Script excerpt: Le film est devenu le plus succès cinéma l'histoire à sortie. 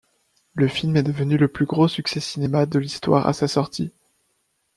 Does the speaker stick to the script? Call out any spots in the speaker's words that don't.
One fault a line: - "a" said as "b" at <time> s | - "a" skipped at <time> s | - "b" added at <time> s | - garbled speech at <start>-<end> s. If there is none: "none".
- "gros" added at 1.7 s
- "de" added at 2.6 s
- "sa" added at 3.3 s